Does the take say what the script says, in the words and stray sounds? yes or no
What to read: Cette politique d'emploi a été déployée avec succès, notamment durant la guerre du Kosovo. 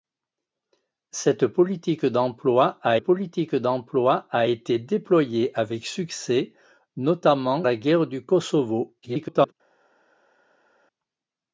no